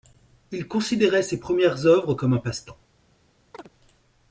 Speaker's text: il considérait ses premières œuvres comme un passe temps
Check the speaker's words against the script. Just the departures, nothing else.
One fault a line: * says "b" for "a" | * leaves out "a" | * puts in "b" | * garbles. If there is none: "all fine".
all fine